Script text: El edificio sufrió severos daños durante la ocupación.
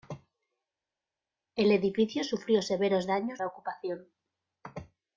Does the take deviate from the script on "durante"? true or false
true